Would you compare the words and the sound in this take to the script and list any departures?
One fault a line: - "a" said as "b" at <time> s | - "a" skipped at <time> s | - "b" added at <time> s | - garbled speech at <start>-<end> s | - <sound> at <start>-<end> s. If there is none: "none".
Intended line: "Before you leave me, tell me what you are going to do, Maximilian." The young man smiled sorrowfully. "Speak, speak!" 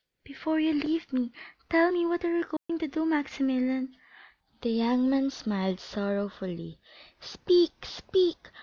- dropout at 2.6-2.7 s